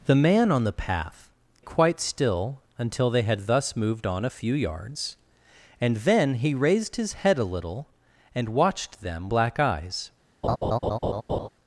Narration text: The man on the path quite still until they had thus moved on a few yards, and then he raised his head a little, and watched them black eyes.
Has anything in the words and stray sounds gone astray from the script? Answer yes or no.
yes